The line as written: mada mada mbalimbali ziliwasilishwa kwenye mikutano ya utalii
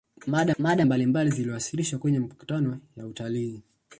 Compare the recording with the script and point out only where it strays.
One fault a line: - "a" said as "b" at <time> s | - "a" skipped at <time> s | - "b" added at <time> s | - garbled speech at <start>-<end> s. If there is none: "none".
none